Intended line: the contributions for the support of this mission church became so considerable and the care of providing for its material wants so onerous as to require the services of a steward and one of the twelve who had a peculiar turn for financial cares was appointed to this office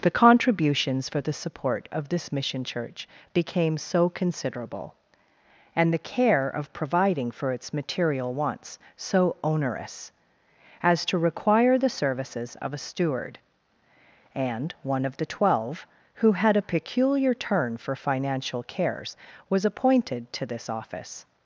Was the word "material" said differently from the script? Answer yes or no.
no